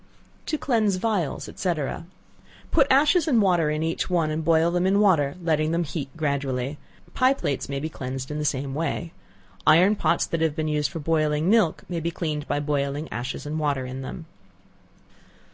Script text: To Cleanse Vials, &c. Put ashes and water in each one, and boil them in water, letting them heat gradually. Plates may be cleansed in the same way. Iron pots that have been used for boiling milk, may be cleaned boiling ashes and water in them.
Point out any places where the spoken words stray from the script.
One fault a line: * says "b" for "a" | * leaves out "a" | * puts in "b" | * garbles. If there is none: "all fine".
* puts in "Pie"
* puts in "by"